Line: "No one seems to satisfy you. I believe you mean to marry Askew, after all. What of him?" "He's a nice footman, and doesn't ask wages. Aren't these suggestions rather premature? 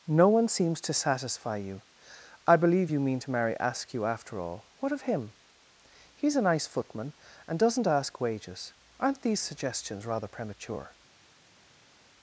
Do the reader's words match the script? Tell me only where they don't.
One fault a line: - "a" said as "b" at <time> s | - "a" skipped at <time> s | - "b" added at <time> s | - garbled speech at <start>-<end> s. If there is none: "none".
none